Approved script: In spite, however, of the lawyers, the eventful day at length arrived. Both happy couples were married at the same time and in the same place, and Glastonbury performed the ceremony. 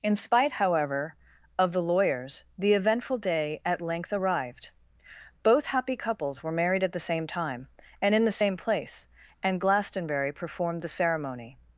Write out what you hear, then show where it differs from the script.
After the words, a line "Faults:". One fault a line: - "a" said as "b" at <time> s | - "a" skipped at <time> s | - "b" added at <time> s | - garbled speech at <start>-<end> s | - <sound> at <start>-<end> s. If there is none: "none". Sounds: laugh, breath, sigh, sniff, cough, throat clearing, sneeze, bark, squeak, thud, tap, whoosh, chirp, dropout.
In spite, however, of the lawyers, the eventful day at length arrived. Both happy couples were married at the same time and in the same place, and Glastonbury performed the ceremony.
Faults:
none